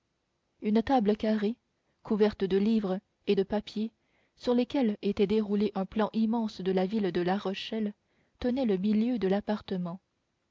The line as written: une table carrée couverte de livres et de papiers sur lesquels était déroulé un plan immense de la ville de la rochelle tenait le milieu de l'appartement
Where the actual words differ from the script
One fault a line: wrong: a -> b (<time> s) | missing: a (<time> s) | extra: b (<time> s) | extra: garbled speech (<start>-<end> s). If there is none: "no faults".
no faults